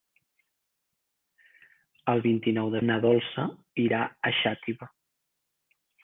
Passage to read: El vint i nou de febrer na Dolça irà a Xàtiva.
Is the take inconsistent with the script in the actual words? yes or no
yes